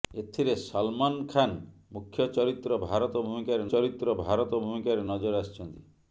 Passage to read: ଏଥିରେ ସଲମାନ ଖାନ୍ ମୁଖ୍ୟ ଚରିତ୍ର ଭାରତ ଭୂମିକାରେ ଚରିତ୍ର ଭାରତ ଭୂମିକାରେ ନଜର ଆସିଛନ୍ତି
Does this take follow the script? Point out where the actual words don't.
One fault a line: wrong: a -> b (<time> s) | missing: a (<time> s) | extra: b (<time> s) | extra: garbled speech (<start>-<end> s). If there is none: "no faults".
no faults